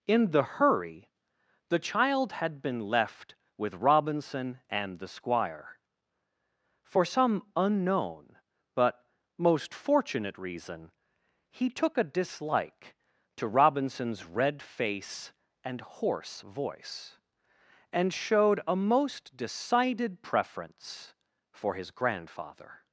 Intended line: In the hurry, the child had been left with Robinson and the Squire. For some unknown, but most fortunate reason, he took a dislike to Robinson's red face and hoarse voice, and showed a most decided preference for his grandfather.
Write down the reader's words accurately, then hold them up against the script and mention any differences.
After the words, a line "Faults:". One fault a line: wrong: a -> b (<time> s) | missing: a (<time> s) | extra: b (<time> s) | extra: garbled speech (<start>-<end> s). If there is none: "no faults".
In the hurry, the child had been left with Robinson and the Squire. For some unknown, but most fortunate reason, he took a dislike to Robinson's red face and hoarse voice, and showed a most decided preference for his grandfather.
Faults:
no faults